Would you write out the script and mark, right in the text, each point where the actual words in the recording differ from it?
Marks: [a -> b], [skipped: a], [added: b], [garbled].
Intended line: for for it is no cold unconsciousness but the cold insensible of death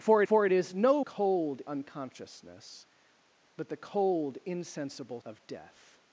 for for it is no cold unconsciousness but the cold insensible of death